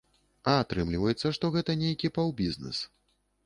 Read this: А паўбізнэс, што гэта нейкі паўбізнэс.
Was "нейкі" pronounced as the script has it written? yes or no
yes